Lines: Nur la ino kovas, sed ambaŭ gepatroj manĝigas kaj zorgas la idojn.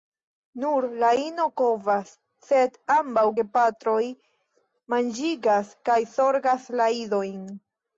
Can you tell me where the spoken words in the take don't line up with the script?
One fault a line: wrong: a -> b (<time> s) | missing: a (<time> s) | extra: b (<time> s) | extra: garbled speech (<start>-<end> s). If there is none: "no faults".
no faults